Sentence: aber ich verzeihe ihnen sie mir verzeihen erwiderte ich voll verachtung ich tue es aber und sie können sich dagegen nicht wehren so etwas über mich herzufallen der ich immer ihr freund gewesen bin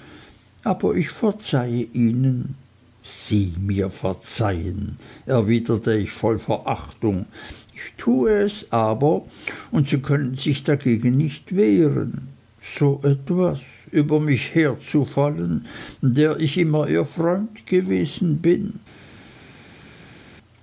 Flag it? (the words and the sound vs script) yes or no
no